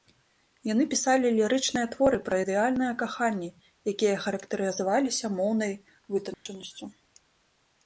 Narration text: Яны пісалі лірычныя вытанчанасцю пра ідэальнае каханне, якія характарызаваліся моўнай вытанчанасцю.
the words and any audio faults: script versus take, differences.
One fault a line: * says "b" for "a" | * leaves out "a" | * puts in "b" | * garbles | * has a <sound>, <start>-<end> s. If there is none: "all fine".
* says "творы" for "вытанчанасцю"
* has a dropout, 6.3-6.5 s